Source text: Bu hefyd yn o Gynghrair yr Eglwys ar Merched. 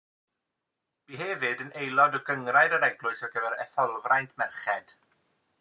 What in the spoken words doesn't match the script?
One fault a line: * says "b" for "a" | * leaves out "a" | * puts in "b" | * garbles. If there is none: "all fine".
* puts in "aelod"
* puts in "gyfer Etholfraint"